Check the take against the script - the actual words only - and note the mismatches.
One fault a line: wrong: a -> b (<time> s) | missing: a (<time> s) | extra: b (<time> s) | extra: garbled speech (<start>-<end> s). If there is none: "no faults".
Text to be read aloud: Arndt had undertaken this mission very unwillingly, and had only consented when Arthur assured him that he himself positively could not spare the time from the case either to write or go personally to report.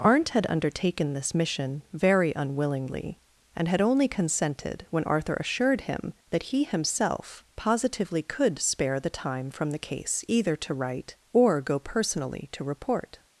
missing: not (8.6 s)